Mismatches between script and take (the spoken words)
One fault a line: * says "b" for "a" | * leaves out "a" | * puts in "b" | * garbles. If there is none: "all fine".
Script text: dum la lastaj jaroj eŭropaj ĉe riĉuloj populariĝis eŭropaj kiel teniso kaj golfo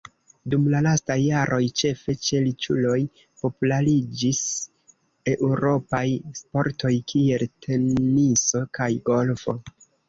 * says "ĉefe" for "eŭropaj"
* puts in "sportoj"